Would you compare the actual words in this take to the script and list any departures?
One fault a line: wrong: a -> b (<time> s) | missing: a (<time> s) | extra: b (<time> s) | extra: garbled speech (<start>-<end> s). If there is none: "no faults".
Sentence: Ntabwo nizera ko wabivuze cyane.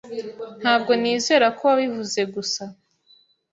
wrong: cyane -> gusa (2.3 s)